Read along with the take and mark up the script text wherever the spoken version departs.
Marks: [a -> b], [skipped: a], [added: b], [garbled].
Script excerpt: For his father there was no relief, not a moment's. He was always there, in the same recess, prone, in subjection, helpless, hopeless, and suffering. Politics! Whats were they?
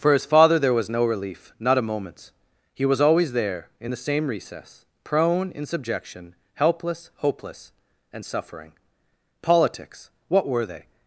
For his father there was no relief, not a moment's. He was always there, in the same recess, prone, in subjection, helpless, hopeless, and suffering. Politics! [Whats -> What] were they?